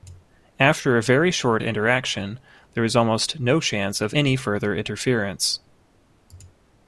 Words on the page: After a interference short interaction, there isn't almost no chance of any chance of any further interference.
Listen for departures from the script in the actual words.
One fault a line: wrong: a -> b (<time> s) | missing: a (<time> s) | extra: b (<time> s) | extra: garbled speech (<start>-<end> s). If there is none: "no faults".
wrong: interference -> very (1.0 s)
wrong: isn't -> is (2.8 s)
missing: chance of any (4.4 s)